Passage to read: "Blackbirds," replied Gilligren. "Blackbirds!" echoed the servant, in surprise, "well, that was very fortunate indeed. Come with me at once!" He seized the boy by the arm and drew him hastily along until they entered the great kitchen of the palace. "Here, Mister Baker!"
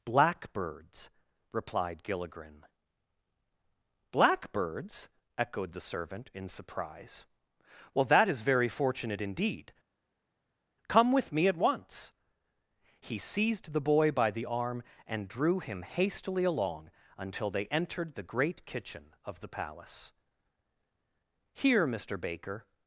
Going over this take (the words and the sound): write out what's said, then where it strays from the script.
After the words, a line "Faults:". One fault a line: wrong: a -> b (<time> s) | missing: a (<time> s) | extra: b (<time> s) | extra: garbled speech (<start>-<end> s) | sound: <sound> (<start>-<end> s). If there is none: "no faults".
"Blackbirds," replied Gilligren. "Blackbirds!" echoed the servant, in surprise, "well, that is very fortunate indeed. Come with me at once!" He seized the boy by the arm and drew him hastily along until they entered the great kitchen of the palace. "Here, Mister Baker!"
Faults:
wrong: was -> is (8.3 s)